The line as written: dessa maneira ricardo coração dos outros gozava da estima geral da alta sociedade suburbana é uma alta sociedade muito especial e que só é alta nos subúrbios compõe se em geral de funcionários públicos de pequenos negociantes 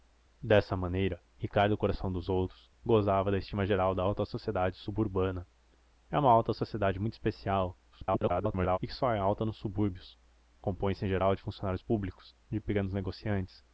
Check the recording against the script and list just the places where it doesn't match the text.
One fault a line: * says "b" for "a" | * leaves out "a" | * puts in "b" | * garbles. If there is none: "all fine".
* garbles